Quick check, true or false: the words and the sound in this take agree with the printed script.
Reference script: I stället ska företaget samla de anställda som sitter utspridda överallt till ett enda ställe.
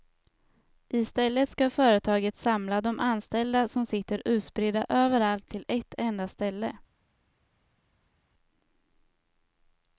true